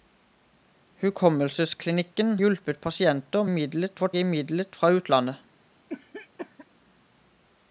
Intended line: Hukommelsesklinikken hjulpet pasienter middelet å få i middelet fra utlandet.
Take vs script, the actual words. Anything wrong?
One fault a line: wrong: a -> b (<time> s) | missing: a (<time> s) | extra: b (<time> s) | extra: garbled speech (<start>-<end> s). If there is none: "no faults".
no faults